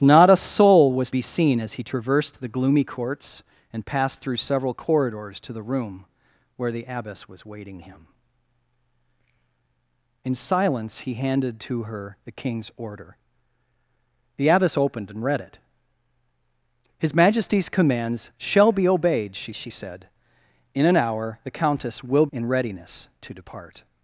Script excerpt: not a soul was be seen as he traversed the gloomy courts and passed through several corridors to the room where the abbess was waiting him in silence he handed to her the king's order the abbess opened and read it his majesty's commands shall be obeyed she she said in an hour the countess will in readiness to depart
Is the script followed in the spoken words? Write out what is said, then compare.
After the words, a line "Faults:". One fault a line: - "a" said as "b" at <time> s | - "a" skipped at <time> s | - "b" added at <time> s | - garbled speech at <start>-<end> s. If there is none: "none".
not a soul was be seen as he traversed the gloomy courts and passed through several corridors to the room where the abbess was waiting him in silence he handed to her the king's order the abbess opened and read it his majesty's commands shall be obeyed she she said in an hour the countess will in readiness to depart
Faults:
none